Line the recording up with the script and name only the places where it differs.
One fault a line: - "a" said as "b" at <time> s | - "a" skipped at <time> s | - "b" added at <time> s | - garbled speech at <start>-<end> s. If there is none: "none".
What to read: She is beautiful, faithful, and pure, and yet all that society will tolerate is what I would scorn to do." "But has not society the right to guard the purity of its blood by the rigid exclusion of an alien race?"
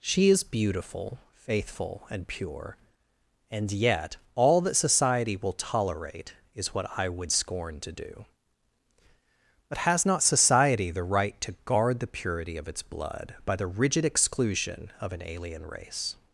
none